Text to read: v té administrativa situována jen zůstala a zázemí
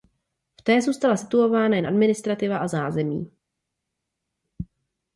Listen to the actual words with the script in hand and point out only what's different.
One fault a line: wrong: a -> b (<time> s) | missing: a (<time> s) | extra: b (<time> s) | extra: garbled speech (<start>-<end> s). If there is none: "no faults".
wrong: administrativa -> zůstala (0.8 s)
wrong: zůstala -> administrativa (1.8 s)